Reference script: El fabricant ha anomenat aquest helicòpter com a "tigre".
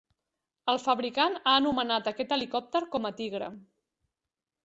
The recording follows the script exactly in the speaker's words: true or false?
true